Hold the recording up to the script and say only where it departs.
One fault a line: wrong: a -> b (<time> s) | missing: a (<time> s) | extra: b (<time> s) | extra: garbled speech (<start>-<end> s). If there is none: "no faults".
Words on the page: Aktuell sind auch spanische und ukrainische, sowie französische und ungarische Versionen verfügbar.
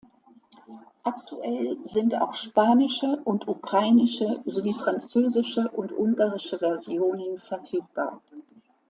no faults